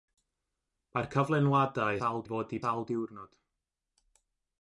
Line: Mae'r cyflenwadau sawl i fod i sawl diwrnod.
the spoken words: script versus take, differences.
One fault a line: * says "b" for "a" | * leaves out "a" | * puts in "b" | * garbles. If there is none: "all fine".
all fine